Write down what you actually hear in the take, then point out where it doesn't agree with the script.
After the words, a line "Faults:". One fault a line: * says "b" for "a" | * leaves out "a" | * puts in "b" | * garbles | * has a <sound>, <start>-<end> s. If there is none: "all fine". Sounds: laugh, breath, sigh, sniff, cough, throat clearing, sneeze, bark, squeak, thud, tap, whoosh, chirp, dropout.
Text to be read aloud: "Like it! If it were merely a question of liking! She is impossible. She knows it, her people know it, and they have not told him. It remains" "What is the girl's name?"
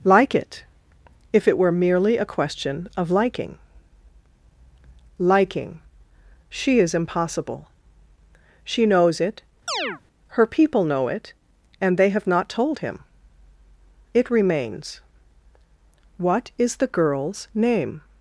"Like it! If it were merely a question of liking liking! She is impossible. She knows it, her people know it, and they have not told him. It remains" "What is the girl's name?"
Faults:
* puts in "liking"
* has a chirp, 9.7-10.0 s